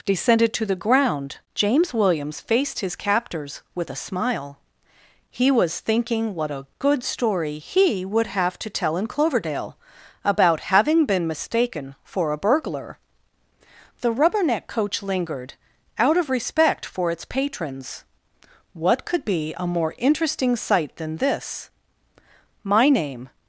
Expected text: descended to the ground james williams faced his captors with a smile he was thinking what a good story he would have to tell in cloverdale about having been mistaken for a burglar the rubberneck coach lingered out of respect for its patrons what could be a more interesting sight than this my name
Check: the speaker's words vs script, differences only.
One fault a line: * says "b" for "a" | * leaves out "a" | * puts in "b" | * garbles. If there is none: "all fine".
all fine